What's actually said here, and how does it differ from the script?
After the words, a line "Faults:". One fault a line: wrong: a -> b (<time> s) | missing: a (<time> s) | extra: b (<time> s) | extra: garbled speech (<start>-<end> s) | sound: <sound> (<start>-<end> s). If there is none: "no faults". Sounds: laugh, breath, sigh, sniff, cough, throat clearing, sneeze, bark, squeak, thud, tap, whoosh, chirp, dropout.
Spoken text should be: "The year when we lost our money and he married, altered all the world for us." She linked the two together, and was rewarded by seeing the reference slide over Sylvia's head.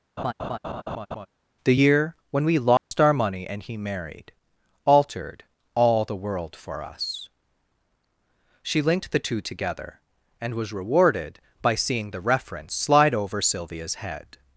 "The year when we lost our money and he married, altered all the world for us." She linked the two together, and was rewarded by seeing the reference slide over Sylvia's head.
Faults:
sound: laugh (0.2-1.3 s)
sound: dropout (2.8-2.9 s)